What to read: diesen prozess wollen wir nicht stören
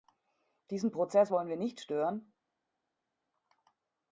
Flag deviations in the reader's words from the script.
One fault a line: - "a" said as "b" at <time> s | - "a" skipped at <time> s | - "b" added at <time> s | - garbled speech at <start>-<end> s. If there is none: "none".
none